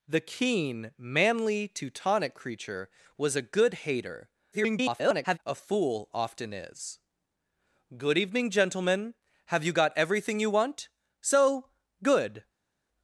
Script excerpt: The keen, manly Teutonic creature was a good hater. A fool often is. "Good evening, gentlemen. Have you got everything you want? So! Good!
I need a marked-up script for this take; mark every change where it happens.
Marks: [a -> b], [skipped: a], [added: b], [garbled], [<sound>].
The keen, manly Teutonic creature was a good hater. [garbled] A fool often is. "Good evening, gentlemen. Have you got everything you want? So! Good!